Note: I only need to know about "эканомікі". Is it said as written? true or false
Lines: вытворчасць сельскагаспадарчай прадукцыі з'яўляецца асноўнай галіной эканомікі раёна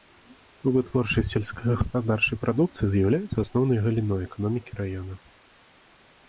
true